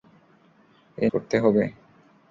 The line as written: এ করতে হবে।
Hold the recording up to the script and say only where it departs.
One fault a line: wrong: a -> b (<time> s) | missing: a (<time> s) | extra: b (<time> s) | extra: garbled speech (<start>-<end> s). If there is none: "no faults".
no faults